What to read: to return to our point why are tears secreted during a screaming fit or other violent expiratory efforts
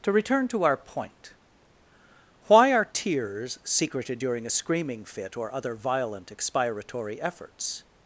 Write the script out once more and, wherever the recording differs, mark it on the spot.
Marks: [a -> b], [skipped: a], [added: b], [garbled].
to return to our point why are tears secreted during a screaming fit or other violent expiratory efforts